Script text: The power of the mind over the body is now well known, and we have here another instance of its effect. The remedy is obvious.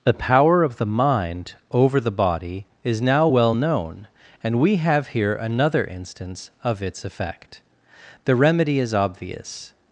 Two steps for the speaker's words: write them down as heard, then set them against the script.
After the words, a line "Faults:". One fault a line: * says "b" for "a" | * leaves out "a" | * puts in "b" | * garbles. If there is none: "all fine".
The power of the mind over the body is now well known, and we have here another instance of its effect. The remedy is obvious.
Faults:
all fine